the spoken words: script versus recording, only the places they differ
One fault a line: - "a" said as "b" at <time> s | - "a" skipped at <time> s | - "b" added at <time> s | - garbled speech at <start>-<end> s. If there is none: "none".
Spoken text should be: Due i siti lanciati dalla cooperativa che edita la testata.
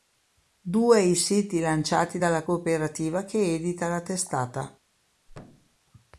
none